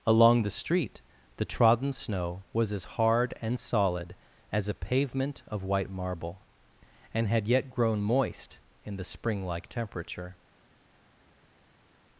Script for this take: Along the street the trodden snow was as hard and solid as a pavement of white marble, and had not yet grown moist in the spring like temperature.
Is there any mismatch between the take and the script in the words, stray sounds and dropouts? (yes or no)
yes